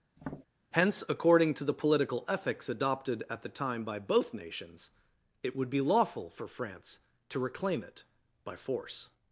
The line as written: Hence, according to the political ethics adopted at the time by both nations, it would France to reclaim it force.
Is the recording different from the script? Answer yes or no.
yes